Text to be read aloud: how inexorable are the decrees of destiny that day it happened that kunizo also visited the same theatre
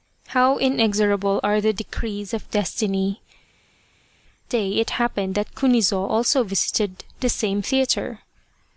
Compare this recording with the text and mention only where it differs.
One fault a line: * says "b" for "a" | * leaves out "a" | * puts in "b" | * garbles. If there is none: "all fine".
* leaves out "that"